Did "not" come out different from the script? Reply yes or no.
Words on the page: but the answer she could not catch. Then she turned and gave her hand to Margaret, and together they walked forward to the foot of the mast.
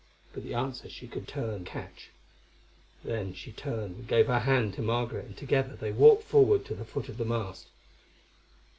yes